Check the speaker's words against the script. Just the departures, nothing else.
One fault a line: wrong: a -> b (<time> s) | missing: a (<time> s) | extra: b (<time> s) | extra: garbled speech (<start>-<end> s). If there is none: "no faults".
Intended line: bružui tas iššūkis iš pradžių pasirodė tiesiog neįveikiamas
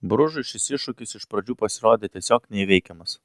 wrong: tas -> šis (0.5 s)